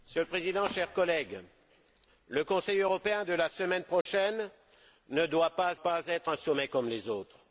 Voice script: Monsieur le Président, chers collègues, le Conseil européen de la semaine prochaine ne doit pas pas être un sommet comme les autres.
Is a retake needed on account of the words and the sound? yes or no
yes